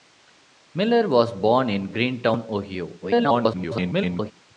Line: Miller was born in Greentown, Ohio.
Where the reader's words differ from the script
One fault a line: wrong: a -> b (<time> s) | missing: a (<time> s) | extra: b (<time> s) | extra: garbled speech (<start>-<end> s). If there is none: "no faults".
extra: garbled speech (3.0-4.3 s)